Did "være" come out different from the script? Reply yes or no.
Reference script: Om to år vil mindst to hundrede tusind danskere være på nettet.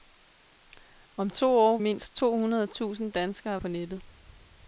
yes